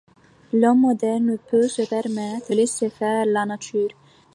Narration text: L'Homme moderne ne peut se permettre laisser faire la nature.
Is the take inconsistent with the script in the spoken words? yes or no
no